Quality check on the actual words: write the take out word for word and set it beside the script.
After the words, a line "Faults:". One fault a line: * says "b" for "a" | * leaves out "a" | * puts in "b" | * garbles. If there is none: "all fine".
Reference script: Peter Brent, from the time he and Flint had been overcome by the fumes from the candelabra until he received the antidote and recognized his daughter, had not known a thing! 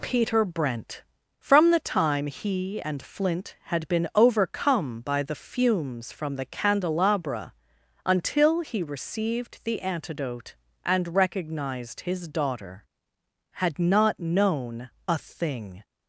Peter Brent, from the time he and Flint had been overcome by the fumes from the candelabra until he received the antidote and recognized his daughter, had not known a thing!
Faults:
all fine